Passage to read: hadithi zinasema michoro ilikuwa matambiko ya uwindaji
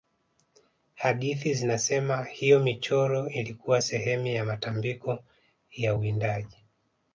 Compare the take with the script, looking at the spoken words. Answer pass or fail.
fail